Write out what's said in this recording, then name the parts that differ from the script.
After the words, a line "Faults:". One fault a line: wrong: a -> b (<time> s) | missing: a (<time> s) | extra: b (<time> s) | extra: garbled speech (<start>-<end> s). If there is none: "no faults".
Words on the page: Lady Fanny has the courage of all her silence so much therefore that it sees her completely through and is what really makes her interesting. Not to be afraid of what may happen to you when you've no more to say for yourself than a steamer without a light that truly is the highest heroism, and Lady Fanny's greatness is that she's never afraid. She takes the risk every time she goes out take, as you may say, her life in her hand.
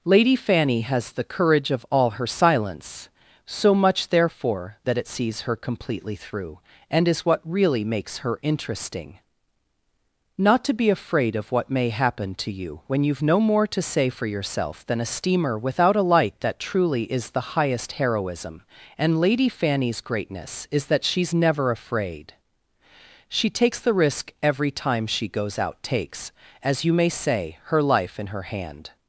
Lady Fanny has the courage of all her silence so much therefore that it sees her completely through and is what really makes her interesting. Not to be afraid of what may happen to you when you've no more to say for yourself than a steamer without a light that truly is the highest heroism, and Lady Fanny's greatness is that she's never afraid. She takes the risk every time she goes out takes, as you may say, her life in her hand.
Faults:
wrong: take -> takes (25.8 s)